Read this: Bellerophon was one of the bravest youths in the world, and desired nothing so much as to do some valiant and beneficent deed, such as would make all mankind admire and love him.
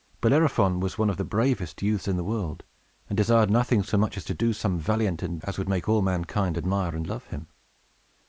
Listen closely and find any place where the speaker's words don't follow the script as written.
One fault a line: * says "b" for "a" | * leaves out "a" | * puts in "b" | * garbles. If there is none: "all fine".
* leaves out "beneficent deed such"